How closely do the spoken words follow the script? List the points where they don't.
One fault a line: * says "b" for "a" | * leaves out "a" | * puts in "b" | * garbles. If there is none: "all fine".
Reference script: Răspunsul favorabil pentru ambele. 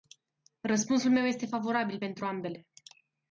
* puts in "meu este"